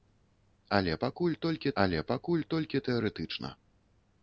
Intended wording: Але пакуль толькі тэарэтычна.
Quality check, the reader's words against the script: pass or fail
fail